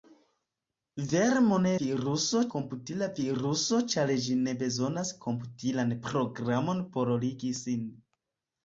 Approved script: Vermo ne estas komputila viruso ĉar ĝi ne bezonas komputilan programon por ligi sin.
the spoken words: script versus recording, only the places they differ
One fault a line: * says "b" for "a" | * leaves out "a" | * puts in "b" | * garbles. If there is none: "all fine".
* says "viruso" for "estas"